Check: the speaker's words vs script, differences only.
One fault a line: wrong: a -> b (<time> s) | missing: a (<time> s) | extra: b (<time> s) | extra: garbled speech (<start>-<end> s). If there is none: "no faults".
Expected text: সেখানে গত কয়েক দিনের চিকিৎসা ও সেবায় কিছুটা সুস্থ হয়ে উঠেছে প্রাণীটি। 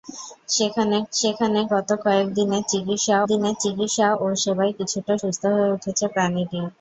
extra: সেখানে (1.1 s)
extra: দিনের চিকিৎসা (3.3 s)